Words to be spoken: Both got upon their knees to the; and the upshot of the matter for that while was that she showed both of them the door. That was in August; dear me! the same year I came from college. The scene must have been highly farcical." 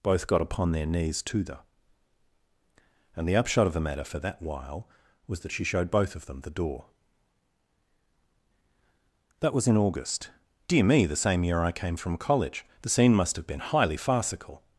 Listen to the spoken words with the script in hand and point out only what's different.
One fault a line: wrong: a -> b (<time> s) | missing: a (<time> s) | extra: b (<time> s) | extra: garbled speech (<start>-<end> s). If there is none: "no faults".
no faults